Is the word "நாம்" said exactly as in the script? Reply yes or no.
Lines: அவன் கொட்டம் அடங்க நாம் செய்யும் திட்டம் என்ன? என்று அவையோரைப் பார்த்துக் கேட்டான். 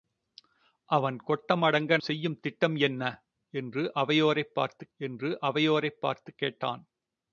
no